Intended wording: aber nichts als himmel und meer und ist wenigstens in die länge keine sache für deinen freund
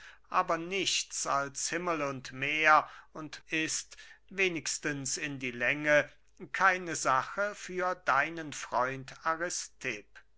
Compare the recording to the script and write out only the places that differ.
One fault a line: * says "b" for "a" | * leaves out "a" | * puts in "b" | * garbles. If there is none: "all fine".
all fine